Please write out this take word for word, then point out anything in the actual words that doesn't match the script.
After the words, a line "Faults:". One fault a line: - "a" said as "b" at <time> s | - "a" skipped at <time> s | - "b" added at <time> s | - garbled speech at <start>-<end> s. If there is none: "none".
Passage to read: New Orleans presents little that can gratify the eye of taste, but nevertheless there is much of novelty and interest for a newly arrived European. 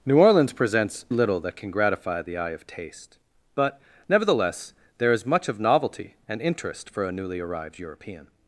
New Orleans presents little that can gratify the eye of taste, but nevertheless there is much of novelty and interest for a newly arrived European.
Faults:
none